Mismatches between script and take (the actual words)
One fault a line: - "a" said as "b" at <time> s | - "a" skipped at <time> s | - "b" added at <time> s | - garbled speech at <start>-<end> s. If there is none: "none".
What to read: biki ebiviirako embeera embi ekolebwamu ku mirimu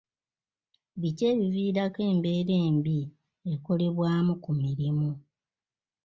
none